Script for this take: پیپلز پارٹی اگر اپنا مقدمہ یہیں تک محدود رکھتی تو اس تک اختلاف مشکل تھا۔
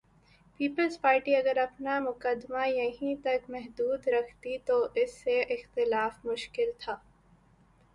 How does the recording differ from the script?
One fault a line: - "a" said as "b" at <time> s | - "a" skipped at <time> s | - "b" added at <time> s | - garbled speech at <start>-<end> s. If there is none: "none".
- "تک" said as "سے" at 5.2 s